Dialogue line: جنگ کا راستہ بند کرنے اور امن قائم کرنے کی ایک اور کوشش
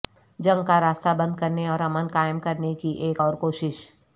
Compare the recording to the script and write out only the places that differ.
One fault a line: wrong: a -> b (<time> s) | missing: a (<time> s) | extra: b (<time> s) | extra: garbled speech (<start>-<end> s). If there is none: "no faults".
no faults